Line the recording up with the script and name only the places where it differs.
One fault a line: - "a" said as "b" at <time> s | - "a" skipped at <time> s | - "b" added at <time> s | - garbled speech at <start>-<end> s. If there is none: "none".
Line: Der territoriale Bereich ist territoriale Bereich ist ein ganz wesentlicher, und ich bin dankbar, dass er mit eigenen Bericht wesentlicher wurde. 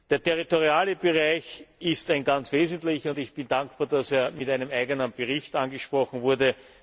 - "territoriale Bereich ist" skipped at 2.1 s
- "einem" added at 4.5 s
- "wesentlicher" said as "angesprochen" at 5.5 s